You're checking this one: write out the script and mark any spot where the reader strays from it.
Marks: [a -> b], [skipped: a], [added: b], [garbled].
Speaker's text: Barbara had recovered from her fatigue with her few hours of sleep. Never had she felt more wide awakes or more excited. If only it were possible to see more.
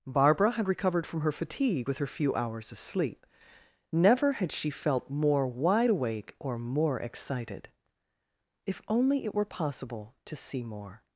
Barbara had recovered from her fatigue with her few hours of sleep. Never had she felt more wide [awakes -> awake] or more excited. If only it were possible to see more.